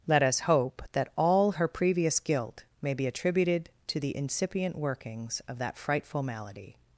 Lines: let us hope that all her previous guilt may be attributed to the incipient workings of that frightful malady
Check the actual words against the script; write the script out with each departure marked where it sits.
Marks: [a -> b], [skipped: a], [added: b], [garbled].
let us hope that all her previous guilt may be attributed to the incipient workings of that frightful malady